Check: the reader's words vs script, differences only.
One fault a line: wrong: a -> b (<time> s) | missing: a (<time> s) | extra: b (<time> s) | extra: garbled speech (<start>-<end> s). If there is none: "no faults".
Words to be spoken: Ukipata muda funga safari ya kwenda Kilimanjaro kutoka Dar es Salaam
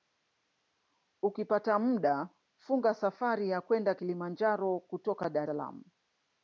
missing: es (5.5 s)